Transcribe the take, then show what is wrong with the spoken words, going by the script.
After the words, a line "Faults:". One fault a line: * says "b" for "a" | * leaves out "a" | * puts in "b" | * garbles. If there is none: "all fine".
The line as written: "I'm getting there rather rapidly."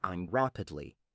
"I'm rapidly."
Faults:
* leaves out "getting there rather"